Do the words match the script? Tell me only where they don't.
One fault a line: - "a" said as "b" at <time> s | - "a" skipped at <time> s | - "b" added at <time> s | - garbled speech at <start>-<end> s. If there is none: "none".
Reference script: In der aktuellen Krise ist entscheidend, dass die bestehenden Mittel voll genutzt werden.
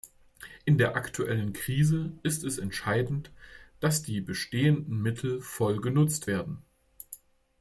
- "es" added at 2.5 s